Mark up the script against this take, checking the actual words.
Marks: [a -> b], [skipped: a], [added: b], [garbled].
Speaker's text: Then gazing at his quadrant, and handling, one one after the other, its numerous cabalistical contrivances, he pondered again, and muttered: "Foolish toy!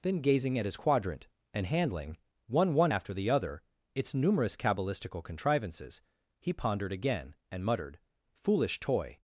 Then gazing at his quadrant, and handling, one one after the other, its numerous cabalistical contrivances, he pondered again, and muttered: "Foolish toy!